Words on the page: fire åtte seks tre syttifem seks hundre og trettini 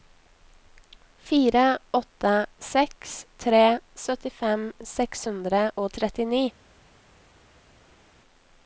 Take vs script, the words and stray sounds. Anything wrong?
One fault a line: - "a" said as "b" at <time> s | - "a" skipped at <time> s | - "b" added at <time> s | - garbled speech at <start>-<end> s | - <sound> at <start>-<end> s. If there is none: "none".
none